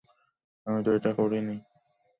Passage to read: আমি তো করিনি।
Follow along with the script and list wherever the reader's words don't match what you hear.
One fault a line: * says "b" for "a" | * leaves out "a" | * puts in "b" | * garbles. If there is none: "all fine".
* puts in "এটা"